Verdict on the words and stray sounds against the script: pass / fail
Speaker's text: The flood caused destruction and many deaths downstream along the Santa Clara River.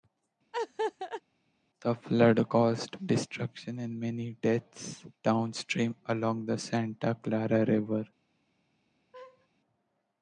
fail